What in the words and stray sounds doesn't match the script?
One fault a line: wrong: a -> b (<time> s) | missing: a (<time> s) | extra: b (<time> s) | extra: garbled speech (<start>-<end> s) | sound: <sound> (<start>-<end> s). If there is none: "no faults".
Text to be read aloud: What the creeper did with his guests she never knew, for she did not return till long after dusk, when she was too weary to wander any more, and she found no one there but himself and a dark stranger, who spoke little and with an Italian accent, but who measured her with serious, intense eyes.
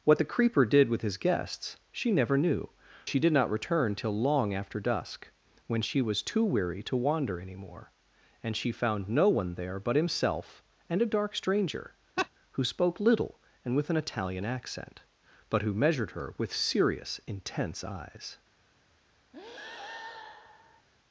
missing: for (2.7 s)
sound: laugh (12.2-12.3 s)
sound: breath (19.3-20.9 s)